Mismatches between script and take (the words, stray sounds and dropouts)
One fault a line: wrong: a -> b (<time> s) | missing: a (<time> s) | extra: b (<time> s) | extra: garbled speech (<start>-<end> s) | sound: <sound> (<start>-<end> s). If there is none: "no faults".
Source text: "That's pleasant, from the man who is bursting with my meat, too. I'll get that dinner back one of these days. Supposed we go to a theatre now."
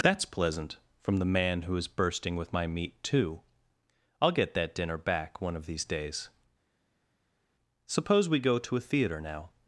wrong: Supposed -> Suppose (7.8 s)